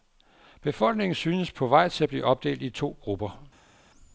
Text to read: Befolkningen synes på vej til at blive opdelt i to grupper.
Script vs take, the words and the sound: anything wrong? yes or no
no